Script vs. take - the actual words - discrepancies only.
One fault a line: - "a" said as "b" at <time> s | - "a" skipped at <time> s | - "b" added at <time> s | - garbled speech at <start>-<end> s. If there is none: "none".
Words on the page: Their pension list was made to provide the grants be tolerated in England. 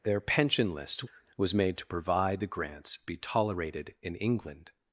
none